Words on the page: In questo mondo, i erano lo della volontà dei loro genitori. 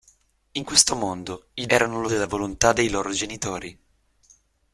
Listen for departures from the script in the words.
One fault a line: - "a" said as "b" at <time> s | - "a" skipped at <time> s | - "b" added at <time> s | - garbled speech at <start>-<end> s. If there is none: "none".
none